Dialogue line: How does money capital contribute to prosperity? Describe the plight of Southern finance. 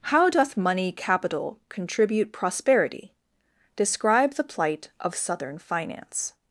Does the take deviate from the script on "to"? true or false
true